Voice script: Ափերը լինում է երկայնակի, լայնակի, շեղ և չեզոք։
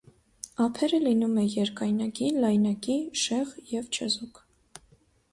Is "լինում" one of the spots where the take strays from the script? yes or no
no